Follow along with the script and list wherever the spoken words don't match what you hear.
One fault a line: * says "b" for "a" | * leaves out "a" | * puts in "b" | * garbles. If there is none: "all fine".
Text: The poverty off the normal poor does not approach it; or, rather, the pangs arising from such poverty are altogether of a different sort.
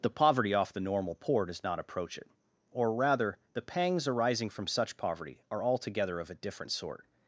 all fine